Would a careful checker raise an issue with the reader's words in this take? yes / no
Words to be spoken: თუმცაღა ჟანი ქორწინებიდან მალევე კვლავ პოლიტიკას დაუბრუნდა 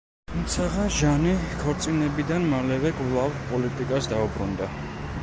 no